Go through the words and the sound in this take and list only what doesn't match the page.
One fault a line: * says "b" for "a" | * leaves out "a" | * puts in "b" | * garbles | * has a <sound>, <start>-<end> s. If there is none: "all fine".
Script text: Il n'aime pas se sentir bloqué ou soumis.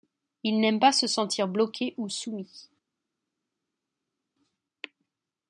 all fine